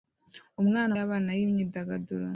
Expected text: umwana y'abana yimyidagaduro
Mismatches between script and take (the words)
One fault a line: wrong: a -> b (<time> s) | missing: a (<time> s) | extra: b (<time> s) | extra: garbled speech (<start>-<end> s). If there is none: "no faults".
no faults